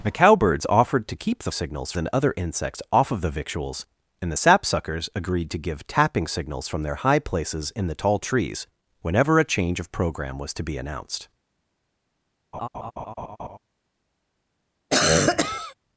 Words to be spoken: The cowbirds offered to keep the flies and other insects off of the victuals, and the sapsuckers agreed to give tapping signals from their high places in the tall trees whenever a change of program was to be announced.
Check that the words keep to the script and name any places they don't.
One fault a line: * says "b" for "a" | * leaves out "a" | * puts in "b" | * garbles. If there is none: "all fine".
* says "signals" for "flies"